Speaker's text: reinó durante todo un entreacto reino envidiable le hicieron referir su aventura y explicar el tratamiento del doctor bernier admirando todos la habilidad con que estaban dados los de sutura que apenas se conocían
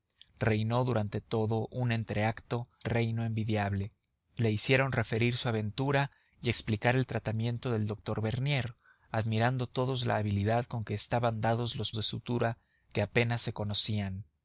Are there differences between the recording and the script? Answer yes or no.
no